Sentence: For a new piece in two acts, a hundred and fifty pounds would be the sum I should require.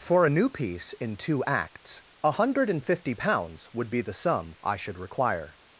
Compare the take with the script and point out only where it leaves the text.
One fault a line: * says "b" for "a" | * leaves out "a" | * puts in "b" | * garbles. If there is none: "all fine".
all fine